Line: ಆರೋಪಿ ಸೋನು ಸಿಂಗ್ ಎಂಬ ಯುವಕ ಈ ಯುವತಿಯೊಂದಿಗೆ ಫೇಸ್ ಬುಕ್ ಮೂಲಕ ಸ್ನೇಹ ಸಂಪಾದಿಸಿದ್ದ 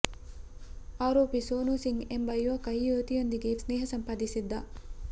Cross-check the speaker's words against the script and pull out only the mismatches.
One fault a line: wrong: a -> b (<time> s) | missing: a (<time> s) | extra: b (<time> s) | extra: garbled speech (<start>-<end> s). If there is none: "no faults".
missing: ಫೇಸ್ ಬುಕ್ ಮೂಲಕ (3.5 s)